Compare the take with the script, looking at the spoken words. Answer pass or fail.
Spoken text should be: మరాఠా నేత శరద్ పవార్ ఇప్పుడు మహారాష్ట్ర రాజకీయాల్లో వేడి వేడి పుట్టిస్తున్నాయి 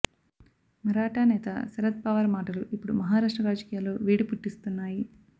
fail